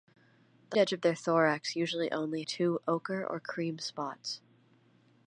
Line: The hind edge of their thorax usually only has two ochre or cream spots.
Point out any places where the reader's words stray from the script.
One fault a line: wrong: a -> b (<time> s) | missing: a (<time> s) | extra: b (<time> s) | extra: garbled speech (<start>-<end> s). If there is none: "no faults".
missing: hind (0.8 s)
missing: has (2.4 s)